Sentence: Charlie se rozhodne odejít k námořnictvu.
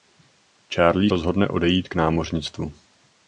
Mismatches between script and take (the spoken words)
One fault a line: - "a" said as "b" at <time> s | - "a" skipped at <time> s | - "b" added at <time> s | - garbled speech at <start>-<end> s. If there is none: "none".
- "se" skipped at 1.1 s